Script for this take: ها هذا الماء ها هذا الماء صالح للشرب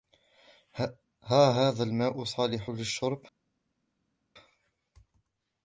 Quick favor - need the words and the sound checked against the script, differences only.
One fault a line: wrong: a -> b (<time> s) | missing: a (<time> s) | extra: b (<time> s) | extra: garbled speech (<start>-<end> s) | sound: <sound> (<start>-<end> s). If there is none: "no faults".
missing: ها هذا الماء (2.2 s)